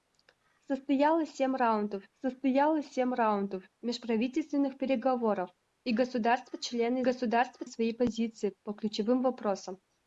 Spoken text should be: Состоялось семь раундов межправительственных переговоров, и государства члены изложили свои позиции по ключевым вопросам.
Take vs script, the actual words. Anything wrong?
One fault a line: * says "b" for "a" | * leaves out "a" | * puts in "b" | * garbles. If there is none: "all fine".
* puts in "состоялось семь раундов"
* says "государства" for "изложили"